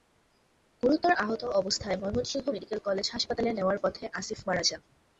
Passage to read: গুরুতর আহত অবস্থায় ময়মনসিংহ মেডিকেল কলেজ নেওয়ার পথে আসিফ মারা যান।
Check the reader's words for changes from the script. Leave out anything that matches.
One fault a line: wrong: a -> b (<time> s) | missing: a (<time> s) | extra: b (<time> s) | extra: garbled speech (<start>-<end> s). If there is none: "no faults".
extra: হাসপাতালে (3.1 s)